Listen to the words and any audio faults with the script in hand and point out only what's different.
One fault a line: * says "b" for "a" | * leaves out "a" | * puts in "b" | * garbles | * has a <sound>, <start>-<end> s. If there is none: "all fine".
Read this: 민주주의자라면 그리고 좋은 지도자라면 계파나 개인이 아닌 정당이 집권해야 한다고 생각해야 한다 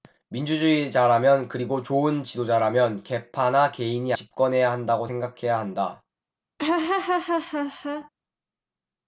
* leaves out "아닌 정당이"
* has a laugh, 6.6-8.1 s